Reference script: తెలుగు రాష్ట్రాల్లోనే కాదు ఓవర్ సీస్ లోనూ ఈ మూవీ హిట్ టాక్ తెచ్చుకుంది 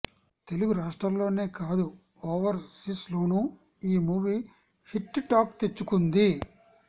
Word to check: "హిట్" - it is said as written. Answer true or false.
true